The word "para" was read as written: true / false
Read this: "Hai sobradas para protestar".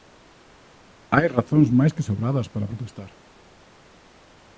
true